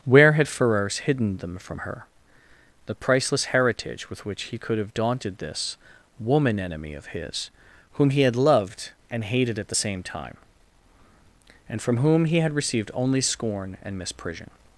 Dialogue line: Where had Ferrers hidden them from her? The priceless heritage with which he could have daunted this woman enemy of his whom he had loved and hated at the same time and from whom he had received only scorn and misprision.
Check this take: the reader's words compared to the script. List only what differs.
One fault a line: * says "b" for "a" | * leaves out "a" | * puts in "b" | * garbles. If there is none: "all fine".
all fine